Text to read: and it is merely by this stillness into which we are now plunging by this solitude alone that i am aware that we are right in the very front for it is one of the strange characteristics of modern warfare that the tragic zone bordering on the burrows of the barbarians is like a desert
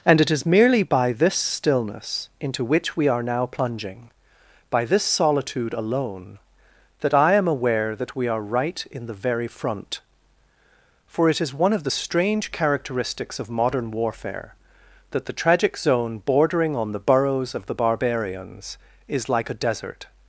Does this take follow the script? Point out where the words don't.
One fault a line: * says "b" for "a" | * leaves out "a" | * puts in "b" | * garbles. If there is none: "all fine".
all fine